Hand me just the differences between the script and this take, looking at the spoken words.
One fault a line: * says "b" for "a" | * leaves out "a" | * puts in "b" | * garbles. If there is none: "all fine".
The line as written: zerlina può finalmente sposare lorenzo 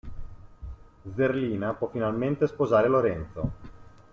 all fine